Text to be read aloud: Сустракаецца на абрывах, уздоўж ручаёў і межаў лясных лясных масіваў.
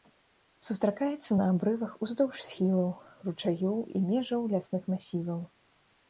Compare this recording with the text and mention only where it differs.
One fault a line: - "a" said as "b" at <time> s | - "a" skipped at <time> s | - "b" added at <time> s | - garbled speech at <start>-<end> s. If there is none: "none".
- "схілаў" added at 2.4 s
- "лясных" skipped at 4.9 s